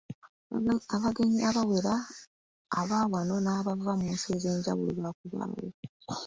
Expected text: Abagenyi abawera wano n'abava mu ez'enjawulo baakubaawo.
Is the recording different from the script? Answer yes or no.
yes